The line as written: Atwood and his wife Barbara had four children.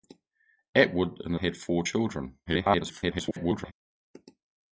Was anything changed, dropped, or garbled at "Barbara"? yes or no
yes